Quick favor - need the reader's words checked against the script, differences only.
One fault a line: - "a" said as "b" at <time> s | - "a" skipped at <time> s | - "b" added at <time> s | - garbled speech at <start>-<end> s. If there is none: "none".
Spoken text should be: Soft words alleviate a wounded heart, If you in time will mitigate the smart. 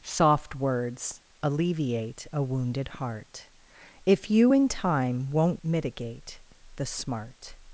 - "will" said as "won't" at 5.3 s